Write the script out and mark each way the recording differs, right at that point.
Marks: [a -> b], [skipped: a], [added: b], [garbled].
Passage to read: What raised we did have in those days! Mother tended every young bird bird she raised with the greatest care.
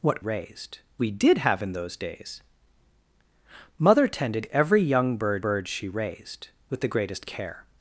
What raised we did have in those days! Mother tended every young bird bird she raised with the greatest care.